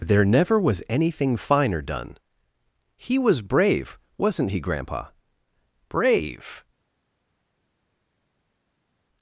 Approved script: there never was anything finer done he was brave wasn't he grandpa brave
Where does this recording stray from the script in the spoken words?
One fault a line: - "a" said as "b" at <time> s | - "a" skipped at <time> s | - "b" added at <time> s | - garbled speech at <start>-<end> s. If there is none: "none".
none